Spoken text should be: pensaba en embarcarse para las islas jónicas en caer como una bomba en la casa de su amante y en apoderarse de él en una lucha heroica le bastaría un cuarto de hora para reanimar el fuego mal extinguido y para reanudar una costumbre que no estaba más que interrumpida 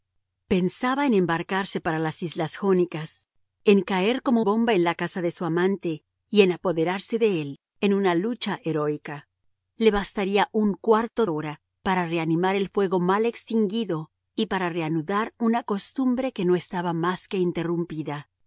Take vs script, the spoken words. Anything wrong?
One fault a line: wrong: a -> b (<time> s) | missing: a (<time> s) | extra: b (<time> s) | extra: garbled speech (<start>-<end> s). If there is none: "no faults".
missing: una (4.4 s)
missing: de (11.3 s)